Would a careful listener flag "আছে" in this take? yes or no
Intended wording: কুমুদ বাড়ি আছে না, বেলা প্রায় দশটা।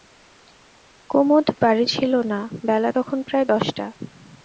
yes